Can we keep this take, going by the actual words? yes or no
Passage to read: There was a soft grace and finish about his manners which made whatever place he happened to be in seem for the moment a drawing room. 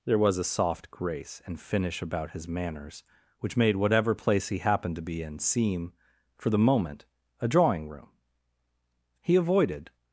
no